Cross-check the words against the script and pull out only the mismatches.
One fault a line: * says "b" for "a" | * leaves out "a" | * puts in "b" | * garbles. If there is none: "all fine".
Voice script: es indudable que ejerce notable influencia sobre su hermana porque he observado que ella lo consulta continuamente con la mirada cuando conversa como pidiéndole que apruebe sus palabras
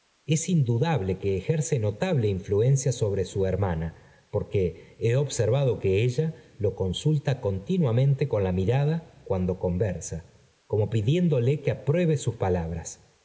all fine